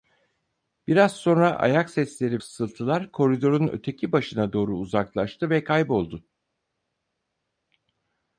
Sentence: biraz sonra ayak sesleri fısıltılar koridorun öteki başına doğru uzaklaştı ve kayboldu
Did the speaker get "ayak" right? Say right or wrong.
right